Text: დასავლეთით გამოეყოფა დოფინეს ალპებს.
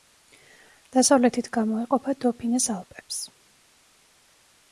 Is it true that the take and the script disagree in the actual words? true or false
false